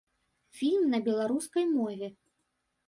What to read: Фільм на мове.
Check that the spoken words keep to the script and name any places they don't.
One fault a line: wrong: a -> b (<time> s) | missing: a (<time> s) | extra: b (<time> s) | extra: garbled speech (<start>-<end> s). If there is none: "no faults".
extra: беларускай (1.0 s)